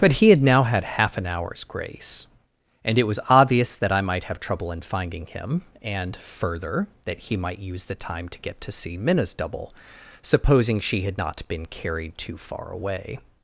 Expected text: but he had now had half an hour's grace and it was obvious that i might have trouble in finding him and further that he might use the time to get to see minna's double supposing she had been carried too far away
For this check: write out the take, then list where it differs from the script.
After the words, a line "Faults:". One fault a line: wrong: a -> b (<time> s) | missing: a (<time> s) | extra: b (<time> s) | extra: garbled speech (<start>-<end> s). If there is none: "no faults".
but he had now had half an hour's grace and it was obvious that i might have trouble in finding him and further that he might use the time to get to see minna's double supposing she had not been carried too far away
Faults:
extra: not (11.2 s)